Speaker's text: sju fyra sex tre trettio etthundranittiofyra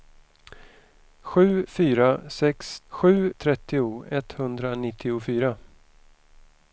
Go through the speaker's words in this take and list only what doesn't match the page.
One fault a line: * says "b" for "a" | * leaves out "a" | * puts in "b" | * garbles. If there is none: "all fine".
* says "sju" for "tre"